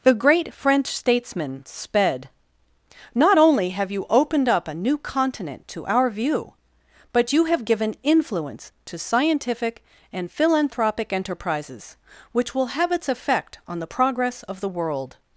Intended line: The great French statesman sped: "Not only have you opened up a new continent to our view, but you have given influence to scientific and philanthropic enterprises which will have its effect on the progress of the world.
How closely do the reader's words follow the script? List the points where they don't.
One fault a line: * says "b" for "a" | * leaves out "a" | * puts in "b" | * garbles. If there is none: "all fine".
all fine